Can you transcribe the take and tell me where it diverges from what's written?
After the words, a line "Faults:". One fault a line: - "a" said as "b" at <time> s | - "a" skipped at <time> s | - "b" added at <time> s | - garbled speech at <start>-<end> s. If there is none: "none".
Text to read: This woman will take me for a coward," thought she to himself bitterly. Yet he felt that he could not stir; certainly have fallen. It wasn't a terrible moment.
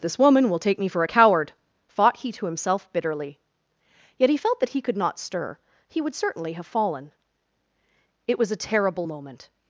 This woman will take me for a coward," thought he to himself bitterly. Yet he felt that he could not stir; he would certainly have fallen. It was a terrible moment.
Faults:
- "she" said as "he" at 2.2 s
- "he would" added at 5.9 s
- "wasn't" said as "was" at 8.4 s